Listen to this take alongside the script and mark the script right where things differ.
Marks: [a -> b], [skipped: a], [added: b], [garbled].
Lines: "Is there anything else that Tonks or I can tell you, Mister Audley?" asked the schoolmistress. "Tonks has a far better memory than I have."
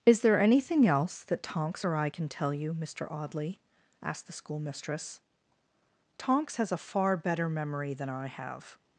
"Is there anything else that Tonks or I can tell you, Mister Audley?" asked the schoolmistress. "Tonks has a far better memory than I have."